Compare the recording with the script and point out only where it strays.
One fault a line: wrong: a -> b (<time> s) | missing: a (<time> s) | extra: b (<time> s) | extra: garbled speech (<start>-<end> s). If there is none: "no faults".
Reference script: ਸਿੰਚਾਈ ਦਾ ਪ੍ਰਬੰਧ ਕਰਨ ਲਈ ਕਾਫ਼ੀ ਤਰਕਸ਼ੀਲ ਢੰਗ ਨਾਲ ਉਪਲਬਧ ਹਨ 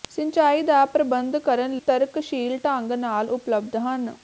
missing: ਲਈ ਕਾਫ਼ੀ (1.8 s)